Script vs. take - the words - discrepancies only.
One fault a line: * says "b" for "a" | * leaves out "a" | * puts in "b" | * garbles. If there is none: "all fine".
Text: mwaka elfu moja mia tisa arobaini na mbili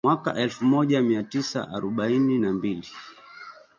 all fine